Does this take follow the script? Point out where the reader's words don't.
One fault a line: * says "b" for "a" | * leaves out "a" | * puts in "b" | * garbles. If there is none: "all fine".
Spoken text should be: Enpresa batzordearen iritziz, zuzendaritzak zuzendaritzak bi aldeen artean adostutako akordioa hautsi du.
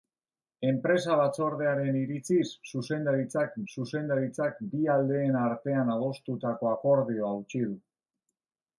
all fine